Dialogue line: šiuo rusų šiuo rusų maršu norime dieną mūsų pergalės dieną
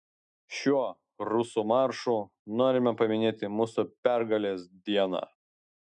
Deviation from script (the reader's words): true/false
true